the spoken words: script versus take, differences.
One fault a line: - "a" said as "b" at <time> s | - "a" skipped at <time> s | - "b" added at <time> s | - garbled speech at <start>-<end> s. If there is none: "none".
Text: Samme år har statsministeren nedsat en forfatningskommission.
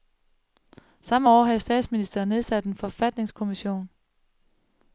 - "har" said as "havde" at 1.4 s